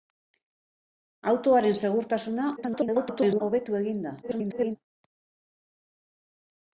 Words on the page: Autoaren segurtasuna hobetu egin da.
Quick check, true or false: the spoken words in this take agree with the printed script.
false